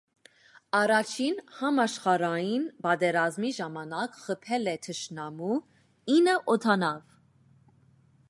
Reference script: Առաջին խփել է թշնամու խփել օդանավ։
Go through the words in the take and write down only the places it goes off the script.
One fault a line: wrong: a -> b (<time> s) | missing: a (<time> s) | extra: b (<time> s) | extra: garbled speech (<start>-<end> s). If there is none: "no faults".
extra: համաշխարհային պատերազմի ժամանակ (1.6 s)
wrong: խփել -> ինը (6.2 s)